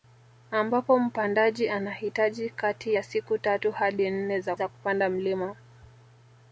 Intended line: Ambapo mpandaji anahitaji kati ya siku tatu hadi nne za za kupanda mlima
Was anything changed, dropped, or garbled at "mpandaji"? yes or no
no